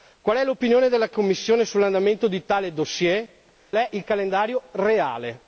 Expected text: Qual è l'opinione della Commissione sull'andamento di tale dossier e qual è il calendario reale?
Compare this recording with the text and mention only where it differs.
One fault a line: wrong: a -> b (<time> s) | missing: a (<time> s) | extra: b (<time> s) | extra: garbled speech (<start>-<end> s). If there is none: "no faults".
missing: e qual (3.3 s)